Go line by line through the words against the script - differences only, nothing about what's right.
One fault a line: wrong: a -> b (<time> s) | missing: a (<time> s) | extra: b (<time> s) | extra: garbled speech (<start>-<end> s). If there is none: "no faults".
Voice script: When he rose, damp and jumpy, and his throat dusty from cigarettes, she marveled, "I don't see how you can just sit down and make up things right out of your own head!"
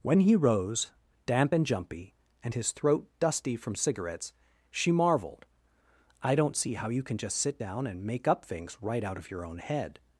no faults